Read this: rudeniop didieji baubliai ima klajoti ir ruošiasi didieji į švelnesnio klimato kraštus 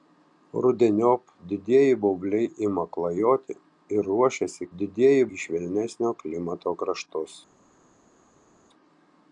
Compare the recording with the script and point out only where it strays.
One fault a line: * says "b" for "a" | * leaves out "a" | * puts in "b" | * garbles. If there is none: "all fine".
all fine